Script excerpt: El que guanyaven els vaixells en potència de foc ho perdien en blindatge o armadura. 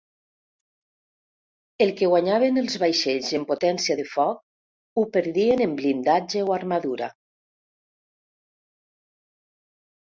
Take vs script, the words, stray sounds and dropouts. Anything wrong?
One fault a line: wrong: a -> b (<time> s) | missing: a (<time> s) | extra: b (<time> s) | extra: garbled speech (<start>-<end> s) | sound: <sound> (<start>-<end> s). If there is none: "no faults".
no faults